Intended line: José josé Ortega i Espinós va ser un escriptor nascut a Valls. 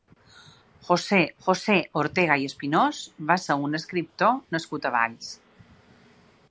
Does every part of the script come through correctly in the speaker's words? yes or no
yes